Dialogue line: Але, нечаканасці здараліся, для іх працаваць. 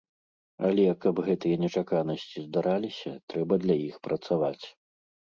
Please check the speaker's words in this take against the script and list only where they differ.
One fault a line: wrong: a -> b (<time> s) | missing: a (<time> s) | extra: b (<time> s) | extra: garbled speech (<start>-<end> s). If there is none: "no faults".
extra: каб гэтыя (1.0 s)
extra: трэба (3.3 s)